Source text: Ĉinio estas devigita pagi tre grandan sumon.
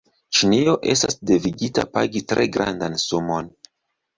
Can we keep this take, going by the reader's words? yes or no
yes